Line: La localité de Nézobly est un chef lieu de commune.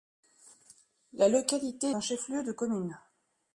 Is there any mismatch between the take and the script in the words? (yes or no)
yes